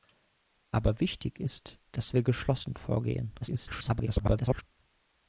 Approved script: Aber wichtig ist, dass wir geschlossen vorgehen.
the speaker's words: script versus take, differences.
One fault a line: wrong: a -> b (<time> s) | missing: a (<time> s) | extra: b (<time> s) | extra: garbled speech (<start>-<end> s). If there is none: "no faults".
extra: garbled speech (3.4-4.6 s)